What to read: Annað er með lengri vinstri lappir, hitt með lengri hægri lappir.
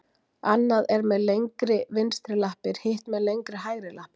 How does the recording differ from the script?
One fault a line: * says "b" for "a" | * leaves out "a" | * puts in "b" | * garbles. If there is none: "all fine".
all fine